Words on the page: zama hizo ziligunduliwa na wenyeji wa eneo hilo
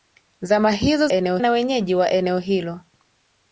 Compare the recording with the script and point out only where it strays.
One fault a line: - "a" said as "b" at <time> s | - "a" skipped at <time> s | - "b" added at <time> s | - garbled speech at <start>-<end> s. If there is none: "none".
- "ziligunduliwa" said as "eneo" at 1.1 s